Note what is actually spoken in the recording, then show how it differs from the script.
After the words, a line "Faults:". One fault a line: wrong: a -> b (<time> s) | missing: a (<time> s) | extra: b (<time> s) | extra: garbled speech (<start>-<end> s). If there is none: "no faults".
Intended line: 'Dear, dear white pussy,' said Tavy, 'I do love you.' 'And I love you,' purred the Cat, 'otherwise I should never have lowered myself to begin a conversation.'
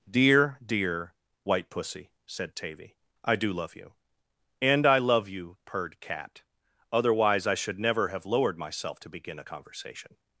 'Dear, dear white pussy,' said Tavy, 'I do love you.' 'And I love you,' purred Cat, 'otherwise I should never have lowered myself to begin a conversation.'
Faults:
missing: the (6.0 s)